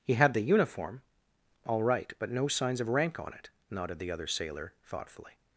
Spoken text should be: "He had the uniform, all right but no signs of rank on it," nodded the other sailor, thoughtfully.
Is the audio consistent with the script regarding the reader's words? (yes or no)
yes